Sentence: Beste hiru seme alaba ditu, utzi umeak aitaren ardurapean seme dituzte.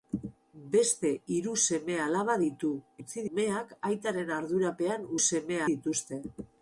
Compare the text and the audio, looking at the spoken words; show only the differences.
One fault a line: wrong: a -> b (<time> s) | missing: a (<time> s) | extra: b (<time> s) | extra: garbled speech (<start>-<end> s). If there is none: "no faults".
no faults